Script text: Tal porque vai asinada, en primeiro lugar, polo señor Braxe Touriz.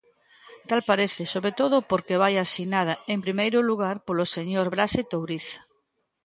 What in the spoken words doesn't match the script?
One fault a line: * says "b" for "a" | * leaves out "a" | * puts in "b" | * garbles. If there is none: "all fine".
* puts in "parece sobre todo"